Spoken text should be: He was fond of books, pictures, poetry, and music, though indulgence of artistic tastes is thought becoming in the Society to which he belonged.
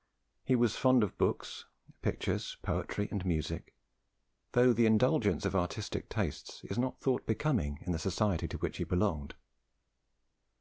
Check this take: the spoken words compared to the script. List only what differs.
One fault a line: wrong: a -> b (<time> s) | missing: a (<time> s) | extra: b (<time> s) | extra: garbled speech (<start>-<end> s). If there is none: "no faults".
extra: the (4.7 s)
extra: not (6.8 s)